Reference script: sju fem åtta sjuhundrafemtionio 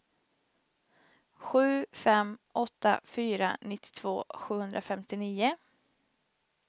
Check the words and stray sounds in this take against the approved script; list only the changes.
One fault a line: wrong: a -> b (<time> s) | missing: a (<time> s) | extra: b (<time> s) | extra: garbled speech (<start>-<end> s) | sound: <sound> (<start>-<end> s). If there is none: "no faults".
extra: fyra nittiotvå (3.0 s)